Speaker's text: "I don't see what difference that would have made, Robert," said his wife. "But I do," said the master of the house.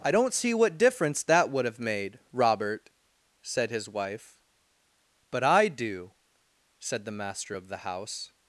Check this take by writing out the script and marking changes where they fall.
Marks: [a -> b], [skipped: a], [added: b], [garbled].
"I don't see what difference that would have made, Robert," said his wife. "But I do," said the master of the house.